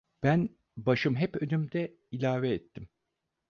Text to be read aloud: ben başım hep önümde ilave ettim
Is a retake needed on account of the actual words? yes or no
no